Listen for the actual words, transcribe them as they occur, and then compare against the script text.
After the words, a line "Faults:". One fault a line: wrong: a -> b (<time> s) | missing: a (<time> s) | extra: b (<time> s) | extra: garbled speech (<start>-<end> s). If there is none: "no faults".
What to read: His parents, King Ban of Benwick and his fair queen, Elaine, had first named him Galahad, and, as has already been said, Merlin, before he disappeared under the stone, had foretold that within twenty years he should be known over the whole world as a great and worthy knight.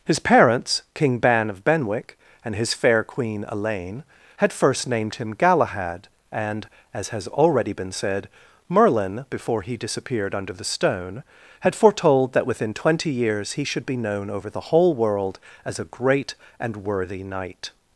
His parents, King Ban of Benwick and his fair queen, Elaine, had first named him Galahad, and, as has already been said, Merlin, before he disappeared under the stone, had foretold that within twenty years he should be known over the whole world as a great and worthy knight.
Faults:
no faults